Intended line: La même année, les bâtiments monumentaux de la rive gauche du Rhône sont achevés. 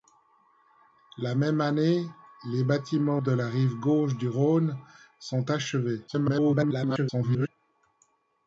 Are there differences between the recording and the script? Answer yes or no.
yes